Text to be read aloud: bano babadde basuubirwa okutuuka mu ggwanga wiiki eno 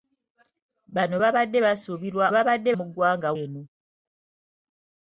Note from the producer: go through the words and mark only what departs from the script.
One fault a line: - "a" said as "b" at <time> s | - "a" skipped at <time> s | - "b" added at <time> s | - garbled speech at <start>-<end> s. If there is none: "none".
- "okutuuka" said as "babadde" at 2.3 s
- "wiiki" skipped at 3.3 s